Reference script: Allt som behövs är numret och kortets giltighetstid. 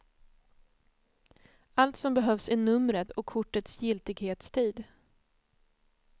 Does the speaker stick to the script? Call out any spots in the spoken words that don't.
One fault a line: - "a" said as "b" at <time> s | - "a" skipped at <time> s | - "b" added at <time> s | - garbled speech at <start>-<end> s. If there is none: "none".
none